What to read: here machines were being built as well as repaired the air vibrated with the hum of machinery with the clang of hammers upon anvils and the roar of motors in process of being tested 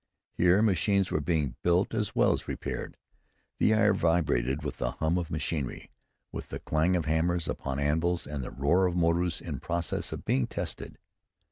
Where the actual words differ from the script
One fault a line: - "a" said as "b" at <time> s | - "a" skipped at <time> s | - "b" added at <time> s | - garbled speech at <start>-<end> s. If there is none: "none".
none